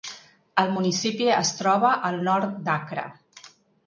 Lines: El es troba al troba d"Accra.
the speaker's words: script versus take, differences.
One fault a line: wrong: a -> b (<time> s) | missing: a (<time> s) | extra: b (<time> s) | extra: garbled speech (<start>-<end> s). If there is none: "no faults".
extra: municipi (0.7 s)
wrong: troba -> nord (2.3 s)